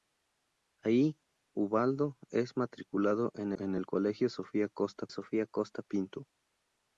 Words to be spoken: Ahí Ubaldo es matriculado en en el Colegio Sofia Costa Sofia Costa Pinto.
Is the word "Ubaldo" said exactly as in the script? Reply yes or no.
yes